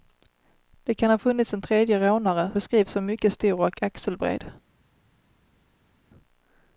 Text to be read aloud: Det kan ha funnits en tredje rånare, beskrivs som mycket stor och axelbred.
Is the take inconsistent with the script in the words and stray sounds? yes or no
no